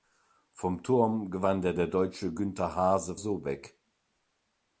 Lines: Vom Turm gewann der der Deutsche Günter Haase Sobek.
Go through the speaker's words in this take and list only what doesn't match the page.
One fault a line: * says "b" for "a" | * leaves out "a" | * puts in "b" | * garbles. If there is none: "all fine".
all fine